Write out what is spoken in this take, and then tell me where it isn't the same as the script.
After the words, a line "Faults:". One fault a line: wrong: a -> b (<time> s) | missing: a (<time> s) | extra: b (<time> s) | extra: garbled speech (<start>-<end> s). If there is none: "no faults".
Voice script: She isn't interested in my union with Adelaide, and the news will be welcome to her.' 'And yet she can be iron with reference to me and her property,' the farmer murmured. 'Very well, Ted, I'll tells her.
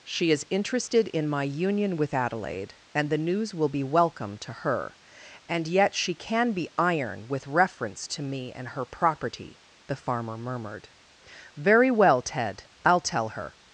She is interested in my union with Adelaide, and the news will be welcome to her.' 'And yet she can be iron with reference to me and her property,' the farmer murmured. 'Very well, Ted, I'll tell her.
Faults:
wrong: isn't -> is (0.3 s)
wrong: tells -> tell (13.0 s)